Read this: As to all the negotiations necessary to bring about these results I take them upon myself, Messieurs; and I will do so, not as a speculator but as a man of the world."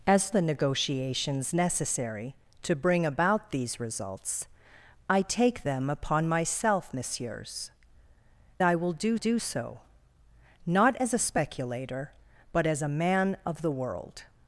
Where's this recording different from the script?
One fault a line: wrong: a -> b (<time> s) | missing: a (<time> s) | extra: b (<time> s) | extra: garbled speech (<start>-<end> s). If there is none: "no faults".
missing: to all (0.3 s)
missing: and (7.7 s)
extra: do (9.1 s)